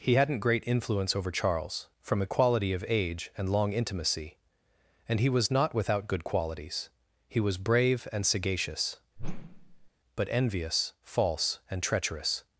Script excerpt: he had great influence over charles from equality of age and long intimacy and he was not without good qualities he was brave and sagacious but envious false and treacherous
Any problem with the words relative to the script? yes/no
yes